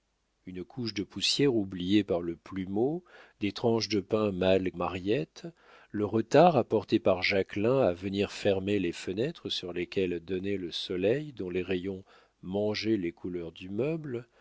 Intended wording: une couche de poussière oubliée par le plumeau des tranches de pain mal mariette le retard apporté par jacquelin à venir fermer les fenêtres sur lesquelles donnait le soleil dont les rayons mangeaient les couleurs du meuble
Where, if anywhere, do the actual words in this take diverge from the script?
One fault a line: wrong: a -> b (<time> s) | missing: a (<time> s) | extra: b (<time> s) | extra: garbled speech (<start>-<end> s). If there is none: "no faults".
no faults